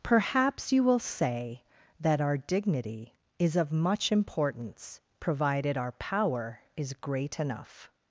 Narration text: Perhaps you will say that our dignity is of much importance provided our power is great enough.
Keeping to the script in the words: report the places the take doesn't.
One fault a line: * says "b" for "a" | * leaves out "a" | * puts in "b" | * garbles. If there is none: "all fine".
all fine